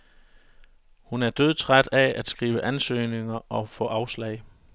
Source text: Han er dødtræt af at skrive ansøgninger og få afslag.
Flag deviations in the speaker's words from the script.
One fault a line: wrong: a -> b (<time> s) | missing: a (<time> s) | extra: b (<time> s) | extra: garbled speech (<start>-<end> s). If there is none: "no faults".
wrong: Han -> Hun (1.0 s)